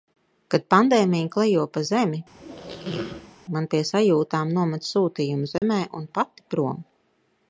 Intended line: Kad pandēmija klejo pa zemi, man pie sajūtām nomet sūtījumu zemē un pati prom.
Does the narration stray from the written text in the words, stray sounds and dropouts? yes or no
yes